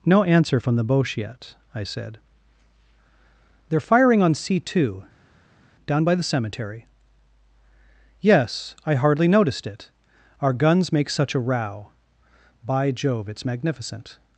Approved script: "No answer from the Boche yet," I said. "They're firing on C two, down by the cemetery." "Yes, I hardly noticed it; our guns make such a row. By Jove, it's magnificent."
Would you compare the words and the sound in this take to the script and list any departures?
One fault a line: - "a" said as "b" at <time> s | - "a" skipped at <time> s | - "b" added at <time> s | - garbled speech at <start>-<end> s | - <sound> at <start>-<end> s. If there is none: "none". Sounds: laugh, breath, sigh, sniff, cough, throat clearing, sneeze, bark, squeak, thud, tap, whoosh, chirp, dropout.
none